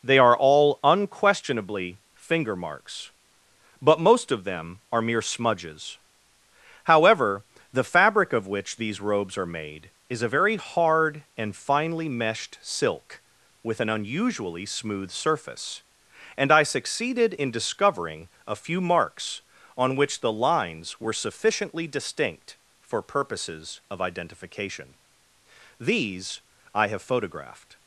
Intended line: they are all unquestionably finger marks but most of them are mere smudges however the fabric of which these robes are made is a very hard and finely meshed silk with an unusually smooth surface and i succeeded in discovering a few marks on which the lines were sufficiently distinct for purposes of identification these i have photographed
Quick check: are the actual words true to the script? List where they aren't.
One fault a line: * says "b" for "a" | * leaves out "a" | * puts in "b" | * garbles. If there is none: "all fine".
all fine